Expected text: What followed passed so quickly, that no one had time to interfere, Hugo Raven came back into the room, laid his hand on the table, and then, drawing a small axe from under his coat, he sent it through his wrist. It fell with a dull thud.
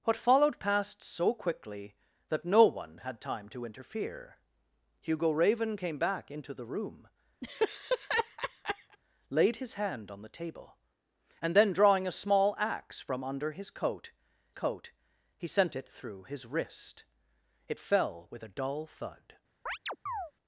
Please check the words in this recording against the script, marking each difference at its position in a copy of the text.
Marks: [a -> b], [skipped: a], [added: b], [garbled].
What followed passed so quickly, that no one had time to interfere, Hugo Raven came back into the room, laid his hand on the table, and then, drawing a small axe from under his coat, [added: coat] he sent it through his wrist. It fell with a dull thud.